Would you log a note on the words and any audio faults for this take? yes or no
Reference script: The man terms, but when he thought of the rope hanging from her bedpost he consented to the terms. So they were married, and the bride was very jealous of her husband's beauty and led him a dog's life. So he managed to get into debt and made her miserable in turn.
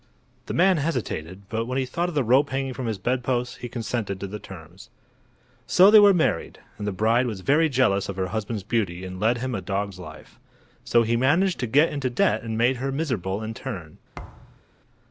yes